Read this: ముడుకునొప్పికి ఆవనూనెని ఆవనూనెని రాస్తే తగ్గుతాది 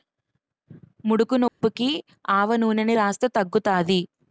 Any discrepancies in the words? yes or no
yes